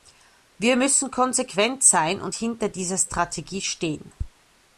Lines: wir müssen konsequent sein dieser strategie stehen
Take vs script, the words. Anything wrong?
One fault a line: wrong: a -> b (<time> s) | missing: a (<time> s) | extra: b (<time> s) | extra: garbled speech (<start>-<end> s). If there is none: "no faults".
extra: und hinter (2.2 s)